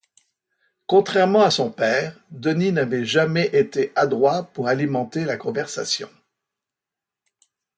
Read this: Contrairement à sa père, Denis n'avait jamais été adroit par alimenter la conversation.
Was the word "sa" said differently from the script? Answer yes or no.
yes